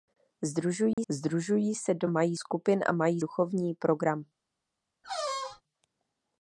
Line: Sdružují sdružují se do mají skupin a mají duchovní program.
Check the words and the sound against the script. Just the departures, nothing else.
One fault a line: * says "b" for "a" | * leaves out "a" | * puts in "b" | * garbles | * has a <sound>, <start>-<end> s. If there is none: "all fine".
* has a dropout, 0.9-1.0 s
* has a squeak, 5.0-5.6 s